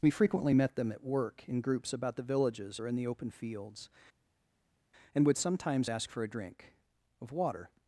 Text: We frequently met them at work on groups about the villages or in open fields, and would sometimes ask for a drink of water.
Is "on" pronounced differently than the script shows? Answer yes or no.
yes